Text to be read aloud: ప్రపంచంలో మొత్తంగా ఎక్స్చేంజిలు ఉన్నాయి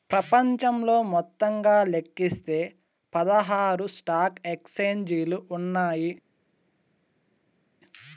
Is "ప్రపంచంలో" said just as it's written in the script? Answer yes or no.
yes